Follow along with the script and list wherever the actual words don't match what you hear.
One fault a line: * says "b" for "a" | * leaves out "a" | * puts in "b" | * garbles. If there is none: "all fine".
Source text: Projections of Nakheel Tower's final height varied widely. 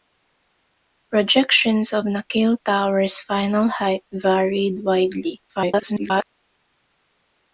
* garbles